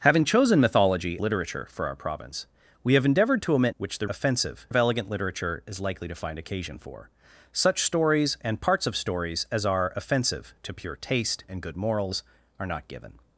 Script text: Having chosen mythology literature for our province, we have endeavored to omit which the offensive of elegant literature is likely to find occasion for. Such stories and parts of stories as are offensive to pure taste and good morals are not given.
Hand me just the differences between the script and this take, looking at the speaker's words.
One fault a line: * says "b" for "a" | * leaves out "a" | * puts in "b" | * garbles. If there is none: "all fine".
all fine